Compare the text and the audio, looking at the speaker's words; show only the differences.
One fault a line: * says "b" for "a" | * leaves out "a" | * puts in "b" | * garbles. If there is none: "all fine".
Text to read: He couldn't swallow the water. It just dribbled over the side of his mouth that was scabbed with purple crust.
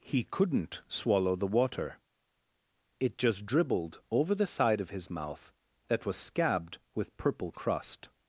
all fine